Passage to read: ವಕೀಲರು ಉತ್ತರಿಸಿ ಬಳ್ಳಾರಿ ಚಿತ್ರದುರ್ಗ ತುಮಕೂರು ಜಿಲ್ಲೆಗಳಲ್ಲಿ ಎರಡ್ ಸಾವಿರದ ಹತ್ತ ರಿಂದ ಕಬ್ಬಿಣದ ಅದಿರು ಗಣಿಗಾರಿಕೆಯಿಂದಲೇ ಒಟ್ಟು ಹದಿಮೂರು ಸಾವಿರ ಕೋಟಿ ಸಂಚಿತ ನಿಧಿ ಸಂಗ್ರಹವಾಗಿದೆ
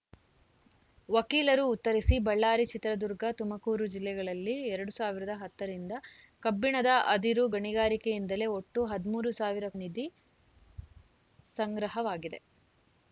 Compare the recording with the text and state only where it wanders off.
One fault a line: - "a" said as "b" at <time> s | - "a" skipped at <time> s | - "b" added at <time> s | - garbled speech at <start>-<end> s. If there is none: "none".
- "ಕೋಟಿ ಸಂಚಿತ" skipped at 9.7 s